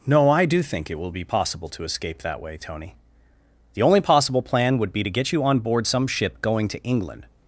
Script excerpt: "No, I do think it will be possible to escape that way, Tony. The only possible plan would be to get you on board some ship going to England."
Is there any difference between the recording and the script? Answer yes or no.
no